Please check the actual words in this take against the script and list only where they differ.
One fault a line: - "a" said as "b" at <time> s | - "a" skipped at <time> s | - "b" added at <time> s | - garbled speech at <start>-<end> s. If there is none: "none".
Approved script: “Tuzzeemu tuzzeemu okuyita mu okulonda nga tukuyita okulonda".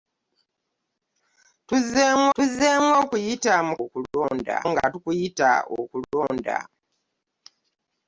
none